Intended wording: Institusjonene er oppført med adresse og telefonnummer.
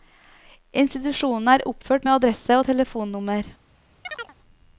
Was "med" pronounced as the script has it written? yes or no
yes